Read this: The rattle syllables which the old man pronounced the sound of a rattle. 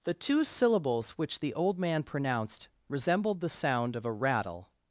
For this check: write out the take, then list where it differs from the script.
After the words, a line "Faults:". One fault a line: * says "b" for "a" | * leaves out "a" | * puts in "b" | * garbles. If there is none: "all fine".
The two syllables which the old man pronounced resembled the sound of a rattle.
Faults:
* says "two" for "rattle"
* puts in "resembled"